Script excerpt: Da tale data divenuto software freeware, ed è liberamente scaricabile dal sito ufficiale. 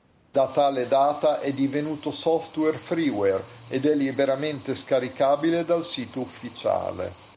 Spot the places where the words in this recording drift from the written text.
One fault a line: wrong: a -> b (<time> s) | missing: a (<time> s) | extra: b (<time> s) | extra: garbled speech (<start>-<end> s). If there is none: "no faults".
extra: è (1.4 s)